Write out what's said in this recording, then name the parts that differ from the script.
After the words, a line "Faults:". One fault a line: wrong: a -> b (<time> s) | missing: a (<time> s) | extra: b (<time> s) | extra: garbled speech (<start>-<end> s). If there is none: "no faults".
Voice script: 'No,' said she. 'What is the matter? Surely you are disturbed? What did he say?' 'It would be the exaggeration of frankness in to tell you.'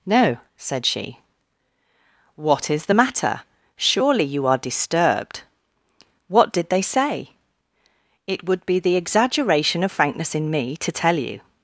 'No,' said she. 'What is the matter? Surely you are disturbed? What did they say?' 'It would be the exaggeration of frankness in me to tell you.'
Faults:
wrong: he -> they (6.7 s)
extra: me (10.5 s)